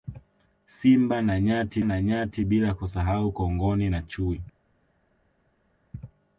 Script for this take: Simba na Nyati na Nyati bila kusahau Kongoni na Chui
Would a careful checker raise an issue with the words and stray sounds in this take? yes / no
no